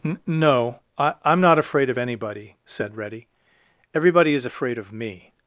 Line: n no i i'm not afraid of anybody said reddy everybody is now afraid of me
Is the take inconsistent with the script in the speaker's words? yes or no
yes